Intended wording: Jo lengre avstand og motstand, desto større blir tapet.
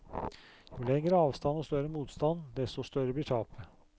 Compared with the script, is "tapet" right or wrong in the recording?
right